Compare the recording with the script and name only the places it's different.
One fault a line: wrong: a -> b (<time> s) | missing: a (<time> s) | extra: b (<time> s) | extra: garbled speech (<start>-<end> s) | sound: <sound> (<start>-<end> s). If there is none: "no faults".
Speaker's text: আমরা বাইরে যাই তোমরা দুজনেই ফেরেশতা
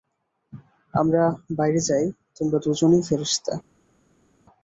no faults